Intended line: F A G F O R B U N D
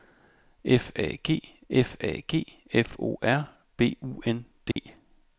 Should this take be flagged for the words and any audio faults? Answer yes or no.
yes